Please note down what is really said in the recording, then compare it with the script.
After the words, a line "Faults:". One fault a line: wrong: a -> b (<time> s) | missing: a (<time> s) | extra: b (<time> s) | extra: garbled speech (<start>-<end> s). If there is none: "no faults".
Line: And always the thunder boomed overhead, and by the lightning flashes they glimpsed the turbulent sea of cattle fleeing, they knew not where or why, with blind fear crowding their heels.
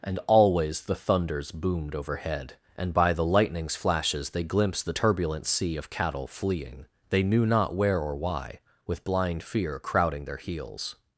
And always the thunders boomed overhead, and by the lightnings flashes they glimpsed the turbulent sea of cattle fleeing, they knew not where or why, with blind fear crowding their heels.
Faults:
wrong: thunder -> thunders (0.9 s)
wrong: lightning -> lightnings (3.2 s)